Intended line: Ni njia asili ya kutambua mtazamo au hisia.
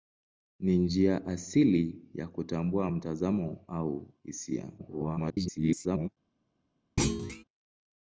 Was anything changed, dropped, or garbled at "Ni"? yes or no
no